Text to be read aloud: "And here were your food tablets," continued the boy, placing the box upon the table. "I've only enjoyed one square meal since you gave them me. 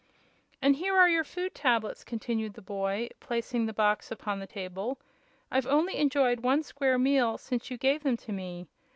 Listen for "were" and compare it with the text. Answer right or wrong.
wrong